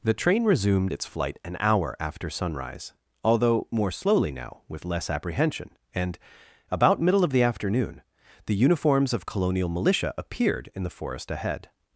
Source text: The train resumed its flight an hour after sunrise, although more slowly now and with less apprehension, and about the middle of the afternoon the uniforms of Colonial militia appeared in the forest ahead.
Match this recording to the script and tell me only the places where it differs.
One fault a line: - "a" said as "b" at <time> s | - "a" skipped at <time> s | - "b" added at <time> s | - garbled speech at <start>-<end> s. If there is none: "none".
- "and" skipped at 4.6 s
- "the" skipped at 7.0 s